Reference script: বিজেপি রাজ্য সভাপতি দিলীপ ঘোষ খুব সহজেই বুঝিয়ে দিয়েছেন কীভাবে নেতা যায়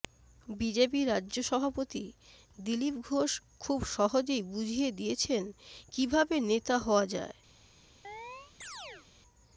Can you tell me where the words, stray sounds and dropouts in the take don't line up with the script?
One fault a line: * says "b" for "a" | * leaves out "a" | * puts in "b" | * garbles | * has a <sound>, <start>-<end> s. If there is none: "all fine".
* puts in "হওয়া"
* has a chirp, 8.0-9.1 s